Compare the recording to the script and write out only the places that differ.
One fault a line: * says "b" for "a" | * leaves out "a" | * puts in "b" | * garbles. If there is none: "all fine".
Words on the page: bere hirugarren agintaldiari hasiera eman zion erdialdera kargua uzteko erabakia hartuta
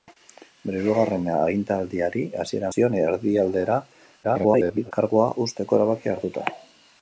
* leaves out "eman"
* garbles